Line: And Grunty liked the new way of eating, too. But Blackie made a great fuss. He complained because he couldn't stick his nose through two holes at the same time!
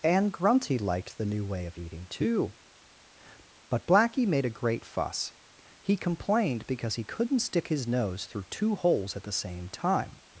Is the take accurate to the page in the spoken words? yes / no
yes